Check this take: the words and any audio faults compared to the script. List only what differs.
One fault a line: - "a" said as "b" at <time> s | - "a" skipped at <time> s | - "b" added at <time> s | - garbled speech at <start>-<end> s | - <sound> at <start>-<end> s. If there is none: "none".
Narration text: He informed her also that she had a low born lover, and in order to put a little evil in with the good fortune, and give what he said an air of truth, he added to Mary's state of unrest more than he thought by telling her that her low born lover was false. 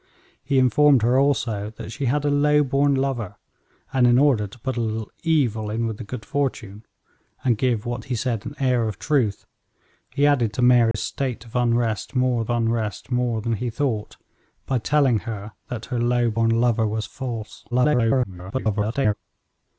- dropout at 10.9-10.9 s
- "unrest more" added at 12.5 s
- garbled speech at 17.7-19.1 s